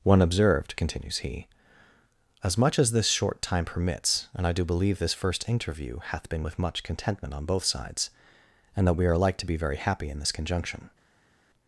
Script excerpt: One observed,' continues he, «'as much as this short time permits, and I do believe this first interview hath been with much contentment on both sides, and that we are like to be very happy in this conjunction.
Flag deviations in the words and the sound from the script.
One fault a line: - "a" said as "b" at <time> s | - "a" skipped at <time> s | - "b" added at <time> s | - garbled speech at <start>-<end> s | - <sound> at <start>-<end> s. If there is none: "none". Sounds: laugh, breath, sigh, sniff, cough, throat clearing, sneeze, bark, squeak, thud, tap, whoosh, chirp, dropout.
none